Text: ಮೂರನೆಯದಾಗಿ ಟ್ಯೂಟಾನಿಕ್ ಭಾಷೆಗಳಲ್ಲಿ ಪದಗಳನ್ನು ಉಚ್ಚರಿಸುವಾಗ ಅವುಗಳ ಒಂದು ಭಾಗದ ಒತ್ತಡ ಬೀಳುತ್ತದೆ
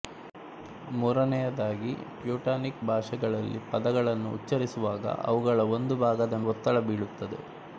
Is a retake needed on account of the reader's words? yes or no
no